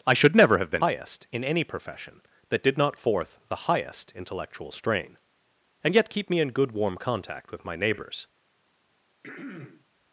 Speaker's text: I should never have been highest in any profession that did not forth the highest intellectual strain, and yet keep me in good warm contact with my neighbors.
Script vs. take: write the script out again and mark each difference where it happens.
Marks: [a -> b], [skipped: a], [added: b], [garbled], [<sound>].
I should never have been highest in any profession that did not forth the highest intellectual strain, and yet keep me in good warm contact with my neighbors. [throat clearing]